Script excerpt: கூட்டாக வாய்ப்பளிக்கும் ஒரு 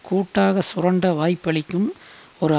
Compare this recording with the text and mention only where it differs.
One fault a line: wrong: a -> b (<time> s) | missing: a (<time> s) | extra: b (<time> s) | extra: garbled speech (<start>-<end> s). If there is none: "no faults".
extra: சுரண்ட (0.6 s)